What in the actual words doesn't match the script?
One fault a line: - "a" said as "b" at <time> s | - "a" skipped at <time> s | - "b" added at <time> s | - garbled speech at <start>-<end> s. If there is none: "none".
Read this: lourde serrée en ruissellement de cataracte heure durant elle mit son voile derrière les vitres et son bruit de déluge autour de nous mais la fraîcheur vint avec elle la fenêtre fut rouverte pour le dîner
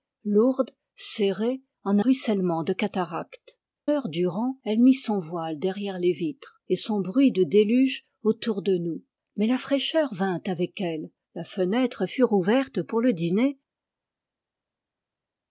none